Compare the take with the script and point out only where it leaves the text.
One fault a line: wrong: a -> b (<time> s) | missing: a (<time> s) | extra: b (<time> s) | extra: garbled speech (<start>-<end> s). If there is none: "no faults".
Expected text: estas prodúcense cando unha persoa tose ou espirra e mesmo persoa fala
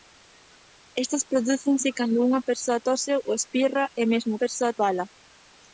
no faults